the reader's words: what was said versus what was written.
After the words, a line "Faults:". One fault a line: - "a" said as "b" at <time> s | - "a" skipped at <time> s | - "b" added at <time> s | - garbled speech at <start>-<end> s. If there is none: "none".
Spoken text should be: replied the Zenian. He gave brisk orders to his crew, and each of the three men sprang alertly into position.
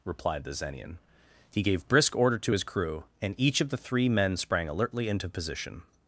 replied the Zenian. He gave brisk order to his crew, and each of the three men sprang alertly into position.
Faults:
- "orders" said as "order" at 2.1 s